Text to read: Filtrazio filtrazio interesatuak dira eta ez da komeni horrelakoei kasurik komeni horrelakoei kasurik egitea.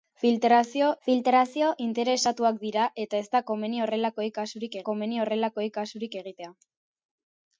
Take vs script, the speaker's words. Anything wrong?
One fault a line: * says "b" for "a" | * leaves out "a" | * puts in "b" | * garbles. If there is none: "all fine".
all fine